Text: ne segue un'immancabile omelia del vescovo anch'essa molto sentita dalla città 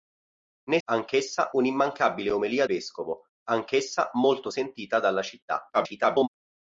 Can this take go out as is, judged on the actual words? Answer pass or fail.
fail